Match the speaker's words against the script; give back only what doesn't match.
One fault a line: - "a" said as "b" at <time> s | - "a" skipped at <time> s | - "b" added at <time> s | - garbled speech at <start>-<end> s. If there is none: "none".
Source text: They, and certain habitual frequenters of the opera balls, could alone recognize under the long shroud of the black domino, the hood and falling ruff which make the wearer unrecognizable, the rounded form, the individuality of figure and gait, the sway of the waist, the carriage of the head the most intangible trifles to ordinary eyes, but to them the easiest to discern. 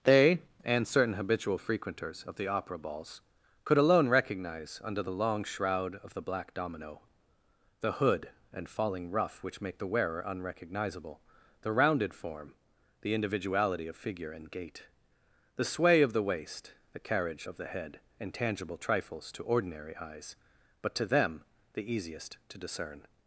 - "the most" skipped at 18.0 s